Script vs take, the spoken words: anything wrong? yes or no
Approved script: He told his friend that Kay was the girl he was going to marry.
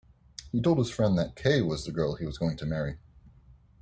no